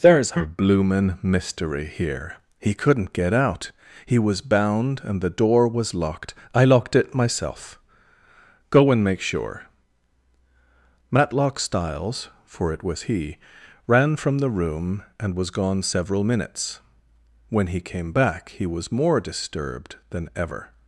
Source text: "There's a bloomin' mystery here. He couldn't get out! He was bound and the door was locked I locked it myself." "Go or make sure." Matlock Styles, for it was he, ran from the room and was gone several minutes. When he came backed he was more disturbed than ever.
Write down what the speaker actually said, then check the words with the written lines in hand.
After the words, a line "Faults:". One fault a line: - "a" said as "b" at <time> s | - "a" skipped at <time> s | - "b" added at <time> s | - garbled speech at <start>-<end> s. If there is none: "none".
"There's a bloomin' mystery here. He couldn't get out! He was bound and the door was locked I locked it myself." "Go and make sure." Matlock Styles, for it was he, ran from the room and was gone several minutes. When he came back he was more disturbed than ever.
Faults:
- "or" said as "and" at 8.9 s
- "backed" said as "back" at 18.1 s